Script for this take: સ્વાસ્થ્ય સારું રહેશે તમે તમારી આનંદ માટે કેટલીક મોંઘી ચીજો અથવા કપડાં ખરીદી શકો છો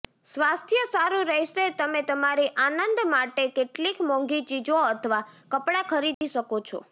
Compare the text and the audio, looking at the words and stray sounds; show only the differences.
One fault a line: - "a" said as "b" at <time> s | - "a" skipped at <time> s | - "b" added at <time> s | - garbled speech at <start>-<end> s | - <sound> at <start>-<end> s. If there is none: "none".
- dropout at 6.1-6.2 s